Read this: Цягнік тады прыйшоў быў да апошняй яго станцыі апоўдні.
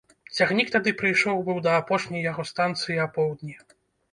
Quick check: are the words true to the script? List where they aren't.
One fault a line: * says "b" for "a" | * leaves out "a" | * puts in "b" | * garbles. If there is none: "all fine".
all fine